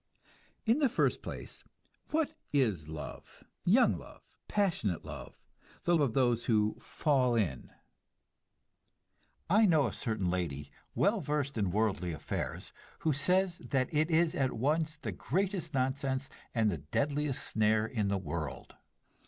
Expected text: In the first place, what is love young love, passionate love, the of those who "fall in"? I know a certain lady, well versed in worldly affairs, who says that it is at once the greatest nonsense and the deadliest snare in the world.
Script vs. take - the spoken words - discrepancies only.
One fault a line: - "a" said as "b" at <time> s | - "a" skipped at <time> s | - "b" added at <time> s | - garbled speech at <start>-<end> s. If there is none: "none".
none